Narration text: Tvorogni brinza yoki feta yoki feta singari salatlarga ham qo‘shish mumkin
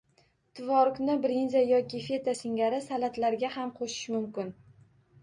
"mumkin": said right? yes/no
yes